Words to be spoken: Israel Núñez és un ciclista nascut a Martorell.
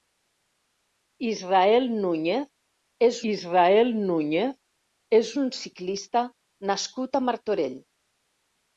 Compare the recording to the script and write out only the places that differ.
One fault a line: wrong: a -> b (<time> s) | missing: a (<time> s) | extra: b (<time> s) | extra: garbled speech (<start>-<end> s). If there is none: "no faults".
extra: israel Núñez és (3.3 s)